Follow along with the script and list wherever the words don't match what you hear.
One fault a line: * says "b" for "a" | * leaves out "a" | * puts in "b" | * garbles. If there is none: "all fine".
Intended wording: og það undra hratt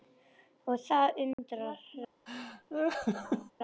all fine